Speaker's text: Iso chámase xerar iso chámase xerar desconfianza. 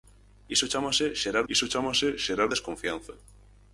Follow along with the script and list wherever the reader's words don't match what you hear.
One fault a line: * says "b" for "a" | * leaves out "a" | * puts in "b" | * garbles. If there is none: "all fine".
all fine